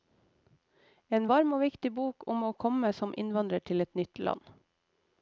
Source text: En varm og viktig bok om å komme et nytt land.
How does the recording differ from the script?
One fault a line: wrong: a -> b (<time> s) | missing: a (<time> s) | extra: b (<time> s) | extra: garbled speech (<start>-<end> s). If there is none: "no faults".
extra: som innvandrer til (3.0 s)